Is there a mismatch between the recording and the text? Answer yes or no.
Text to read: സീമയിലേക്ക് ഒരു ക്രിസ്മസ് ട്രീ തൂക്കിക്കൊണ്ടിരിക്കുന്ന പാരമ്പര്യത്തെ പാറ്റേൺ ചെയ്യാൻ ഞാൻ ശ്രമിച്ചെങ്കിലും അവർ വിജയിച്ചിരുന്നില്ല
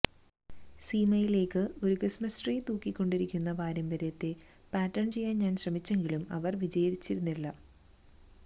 no